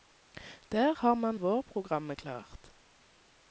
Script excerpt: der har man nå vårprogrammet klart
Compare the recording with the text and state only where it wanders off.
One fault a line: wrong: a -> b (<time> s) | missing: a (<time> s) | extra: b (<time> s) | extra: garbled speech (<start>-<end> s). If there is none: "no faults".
missing: nå (1.4 s)